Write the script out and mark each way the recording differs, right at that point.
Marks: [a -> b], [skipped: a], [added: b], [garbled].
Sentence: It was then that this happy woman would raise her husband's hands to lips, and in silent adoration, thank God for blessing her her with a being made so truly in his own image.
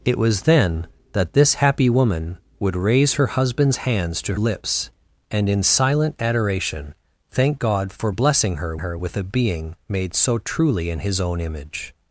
It was then that this happy woman would raise her husband's hands to lips, and in silent adoration, thank God for blessing her her with a being made so truly in his own image.